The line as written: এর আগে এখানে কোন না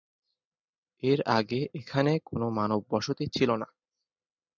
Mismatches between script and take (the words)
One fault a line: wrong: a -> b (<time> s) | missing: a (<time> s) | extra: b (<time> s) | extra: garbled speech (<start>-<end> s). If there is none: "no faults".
extra: মানব বসতি ছিল (2.5 s)